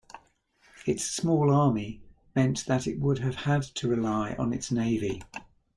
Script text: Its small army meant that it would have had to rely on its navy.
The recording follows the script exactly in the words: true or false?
true